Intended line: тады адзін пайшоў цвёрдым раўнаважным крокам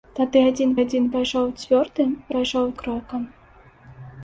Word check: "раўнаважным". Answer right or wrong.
wrong